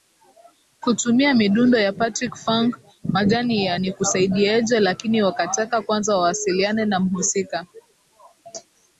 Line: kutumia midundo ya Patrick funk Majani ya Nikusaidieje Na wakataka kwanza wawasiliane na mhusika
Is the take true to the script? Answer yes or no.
no